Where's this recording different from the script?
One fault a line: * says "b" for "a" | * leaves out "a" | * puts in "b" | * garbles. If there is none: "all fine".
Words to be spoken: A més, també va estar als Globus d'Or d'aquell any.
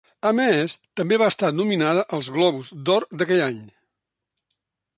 * puts in "nominada"